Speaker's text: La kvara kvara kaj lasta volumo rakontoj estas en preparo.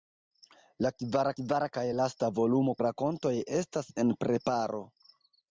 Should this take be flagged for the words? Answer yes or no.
no